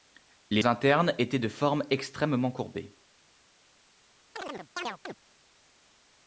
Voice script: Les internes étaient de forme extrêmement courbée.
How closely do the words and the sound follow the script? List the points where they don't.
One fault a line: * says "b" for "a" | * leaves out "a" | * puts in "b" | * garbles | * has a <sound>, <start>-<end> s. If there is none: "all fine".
* has a chirp, 4.4-5.1 s